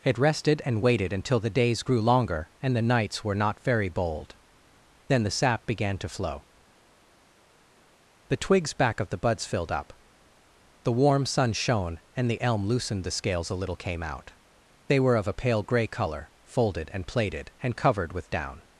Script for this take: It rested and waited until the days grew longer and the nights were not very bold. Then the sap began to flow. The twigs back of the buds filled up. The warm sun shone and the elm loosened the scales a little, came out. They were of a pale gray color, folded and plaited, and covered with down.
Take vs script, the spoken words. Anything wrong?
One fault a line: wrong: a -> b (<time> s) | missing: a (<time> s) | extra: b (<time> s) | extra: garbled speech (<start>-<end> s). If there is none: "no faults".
no faults